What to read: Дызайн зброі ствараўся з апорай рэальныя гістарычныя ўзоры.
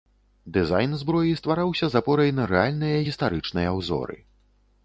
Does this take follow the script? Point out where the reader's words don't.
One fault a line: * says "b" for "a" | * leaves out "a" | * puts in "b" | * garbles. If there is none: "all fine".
* puts in "на"